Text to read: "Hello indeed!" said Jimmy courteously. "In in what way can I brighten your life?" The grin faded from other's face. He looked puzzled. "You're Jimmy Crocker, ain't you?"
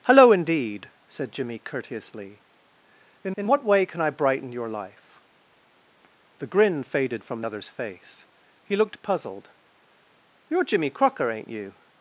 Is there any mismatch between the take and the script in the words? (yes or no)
no